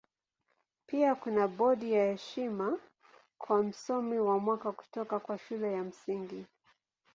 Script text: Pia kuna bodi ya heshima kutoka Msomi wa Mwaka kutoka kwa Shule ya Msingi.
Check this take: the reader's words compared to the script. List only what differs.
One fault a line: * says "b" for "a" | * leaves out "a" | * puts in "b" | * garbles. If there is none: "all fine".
* says "kwa" for "kutoka"